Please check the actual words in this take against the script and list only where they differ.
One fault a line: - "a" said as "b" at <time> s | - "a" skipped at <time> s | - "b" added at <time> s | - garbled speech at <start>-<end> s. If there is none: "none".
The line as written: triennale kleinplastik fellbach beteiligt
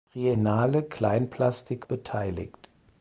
- "fellbach" skipped at 1.9 s